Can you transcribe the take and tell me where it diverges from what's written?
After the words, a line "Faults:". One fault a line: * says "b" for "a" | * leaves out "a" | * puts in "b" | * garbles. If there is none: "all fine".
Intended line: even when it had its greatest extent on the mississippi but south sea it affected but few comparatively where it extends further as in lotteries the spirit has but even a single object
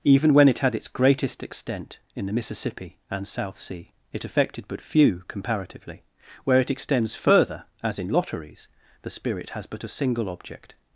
even when it had its greatest extent in the mississippi and south sea it affected but few comparatively where it extends further as in lotteries the spirit has but a single object
Faults:
* says "in" for "on"
* says "and" for "but"
* leaves out "even"